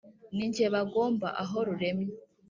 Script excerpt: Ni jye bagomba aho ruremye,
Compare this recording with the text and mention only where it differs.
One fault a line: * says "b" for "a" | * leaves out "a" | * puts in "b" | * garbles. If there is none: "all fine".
all fine